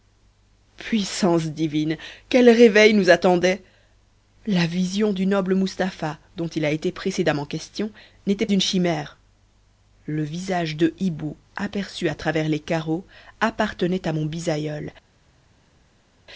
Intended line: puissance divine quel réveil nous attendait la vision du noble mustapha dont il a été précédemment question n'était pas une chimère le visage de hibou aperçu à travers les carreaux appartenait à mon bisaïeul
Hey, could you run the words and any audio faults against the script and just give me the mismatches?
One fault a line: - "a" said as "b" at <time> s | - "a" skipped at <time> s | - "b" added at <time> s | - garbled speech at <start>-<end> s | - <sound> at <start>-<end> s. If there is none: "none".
- "pas" skipped at 8.5 s